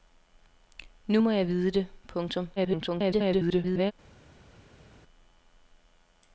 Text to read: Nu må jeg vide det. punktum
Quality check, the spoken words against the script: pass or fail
fail